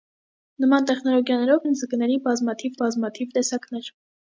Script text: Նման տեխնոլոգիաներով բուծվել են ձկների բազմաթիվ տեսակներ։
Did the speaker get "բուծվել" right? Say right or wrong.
wrong